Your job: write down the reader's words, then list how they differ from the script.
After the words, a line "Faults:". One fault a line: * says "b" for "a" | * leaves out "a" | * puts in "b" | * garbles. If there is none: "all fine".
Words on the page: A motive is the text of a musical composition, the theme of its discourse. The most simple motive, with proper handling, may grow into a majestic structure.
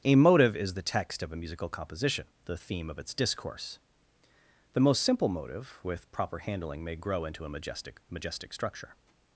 A motive is the text of a musical composition, the theme of its discourse. The most simple motive, with proper handling, may grow into a majestic majestic structure.
Faults:
* puts in "majestic"